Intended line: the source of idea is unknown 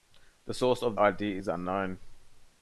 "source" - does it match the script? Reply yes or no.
yes